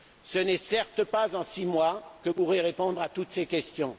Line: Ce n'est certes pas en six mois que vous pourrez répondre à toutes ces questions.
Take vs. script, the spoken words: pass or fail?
fail